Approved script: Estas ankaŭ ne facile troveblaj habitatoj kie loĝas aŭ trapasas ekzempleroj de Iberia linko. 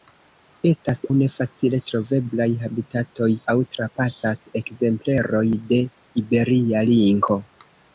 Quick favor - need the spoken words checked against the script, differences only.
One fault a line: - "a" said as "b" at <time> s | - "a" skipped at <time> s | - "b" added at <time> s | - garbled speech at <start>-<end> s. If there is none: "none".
- "ankaŭ" skipped at 1.0 s
- "kie loĝas" skipped at 3.3 s